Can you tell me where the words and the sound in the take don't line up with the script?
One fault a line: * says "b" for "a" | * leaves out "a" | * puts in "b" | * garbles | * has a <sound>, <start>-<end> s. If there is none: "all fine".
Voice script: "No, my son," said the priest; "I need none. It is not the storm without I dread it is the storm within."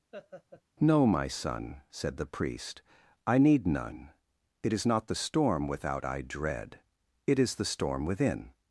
* has a laugh, 0.1-0.6 s